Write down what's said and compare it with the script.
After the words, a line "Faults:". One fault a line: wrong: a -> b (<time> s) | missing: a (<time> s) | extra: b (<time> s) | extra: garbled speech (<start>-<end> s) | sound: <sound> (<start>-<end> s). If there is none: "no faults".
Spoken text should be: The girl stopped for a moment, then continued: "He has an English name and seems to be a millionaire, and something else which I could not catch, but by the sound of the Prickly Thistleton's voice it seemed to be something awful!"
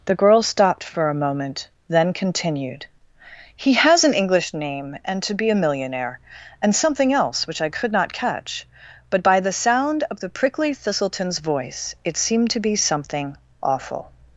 The girl stopped for a moment, then continued: "He has an English name and to be a millionaire, and something else which I could not catch, but by the sound of the Prickly Thistleton's voice it seemed to be something awful!"
Faults:
missing: seems (5.2 s)